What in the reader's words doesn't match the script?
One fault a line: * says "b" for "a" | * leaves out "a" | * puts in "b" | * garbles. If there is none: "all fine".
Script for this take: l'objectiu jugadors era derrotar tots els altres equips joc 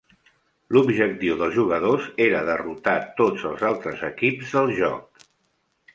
* puts in "dels"
* puts in "del"